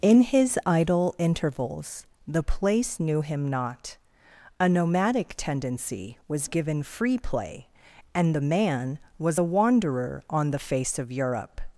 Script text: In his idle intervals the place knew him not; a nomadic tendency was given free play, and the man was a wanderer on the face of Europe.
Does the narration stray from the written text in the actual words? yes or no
no